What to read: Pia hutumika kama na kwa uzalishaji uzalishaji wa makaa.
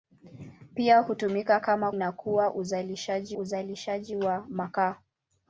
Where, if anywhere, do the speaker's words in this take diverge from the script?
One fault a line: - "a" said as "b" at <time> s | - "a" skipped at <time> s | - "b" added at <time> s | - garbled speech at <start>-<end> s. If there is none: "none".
none